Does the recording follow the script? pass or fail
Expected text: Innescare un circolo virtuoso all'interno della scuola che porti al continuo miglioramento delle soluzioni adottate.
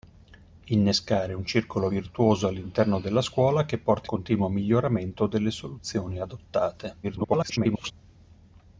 fail